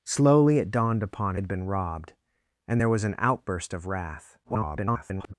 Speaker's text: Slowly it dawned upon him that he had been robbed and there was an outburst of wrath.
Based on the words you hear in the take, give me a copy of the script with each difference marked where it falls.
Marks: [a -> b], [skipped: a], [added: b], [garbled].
Slowly it dawned upon [skipped: him that he] had been robbed and there was an outburst of wrath. [garbled]